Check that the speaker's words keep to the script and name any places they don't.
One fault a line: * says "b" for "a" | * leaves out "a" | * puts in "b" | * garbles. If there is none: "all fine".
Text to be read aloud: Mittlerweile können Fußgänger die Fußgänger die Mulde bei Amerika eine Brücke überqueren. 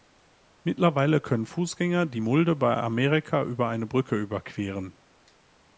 * leaves out "Fußgänger die"
* puts in "über"